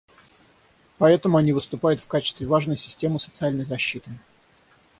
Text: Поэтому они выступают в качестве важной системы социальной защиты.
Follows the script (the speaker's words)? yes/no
yes